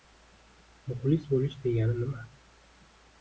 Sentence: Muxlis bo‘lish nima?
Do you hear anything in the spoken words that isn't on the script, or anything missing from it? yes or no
yes